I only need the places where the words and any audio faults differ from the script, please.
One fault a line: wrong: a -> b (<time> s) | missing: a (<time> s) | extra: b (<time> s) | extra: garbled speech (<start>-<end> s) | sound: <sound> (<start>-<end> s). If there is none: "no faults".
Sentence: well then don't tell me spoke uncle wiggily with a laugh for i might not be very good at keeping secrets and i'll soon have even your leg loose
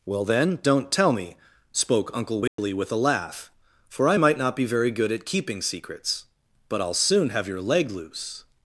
sound: dropout (2.5-2.6 s)
wrong: and -> but (6.7 s)
missing: even (7.5 s)